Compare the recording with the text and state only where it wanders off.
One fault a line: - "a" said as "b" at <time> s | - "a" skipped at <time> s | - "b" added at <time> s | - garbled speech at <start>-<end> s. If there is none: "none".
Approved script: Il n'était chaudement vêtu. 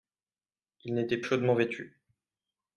none